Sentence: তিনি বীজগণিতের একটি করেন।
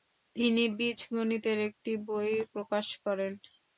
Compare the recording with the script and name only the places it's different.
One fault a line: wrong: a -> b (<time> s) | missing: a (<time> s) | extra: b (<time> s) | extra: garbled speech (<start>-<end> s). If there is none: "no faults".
extra: বই প্রকাশ (2.1 s)